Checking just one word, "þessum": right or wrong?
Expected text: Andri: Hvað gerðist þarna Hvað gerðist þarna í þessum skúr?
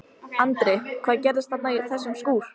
right